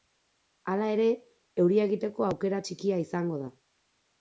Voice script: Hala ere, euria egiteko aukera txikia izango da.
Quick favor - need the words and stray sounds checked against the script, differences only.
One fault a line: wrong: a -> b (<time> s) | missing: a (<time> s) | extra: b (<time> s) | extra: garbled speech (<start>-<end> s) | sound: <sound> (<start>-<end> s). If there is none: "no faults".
no faults